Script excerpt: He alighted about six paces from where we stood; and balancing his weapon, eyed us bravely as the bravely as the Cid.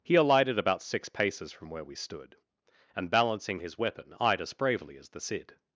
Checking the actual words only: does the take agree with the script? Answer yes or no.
no